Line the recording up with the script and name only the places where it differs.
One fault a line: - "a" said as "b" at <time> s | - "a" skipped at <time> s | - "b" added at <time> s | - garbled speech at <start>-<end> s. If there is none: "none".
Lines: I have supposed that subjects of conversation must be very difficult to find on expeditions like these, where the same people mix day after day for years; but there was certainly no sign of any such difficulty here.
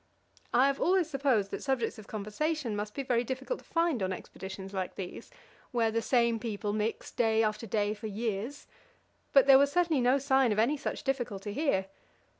- "always" added at 0.8 s